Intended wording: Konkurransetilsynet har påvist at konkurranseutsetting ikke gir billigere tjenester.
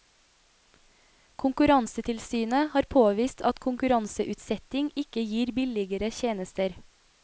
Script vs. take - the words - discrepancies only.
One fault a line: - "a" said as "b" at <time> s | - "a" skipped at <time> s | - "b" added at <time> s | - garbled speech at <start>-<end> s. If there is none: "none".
none